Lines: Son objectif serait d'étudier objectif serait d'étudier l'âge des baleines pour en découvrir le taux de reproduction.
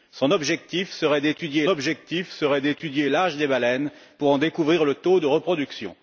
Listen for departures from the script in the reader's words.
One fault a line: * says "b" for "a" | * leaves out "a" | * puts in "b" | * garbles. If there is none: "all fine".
all fine